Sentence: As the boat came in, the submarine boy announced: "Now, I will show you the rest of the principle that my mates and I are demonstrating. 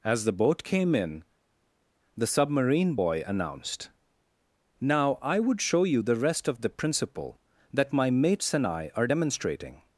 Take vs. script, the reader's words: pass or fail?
fail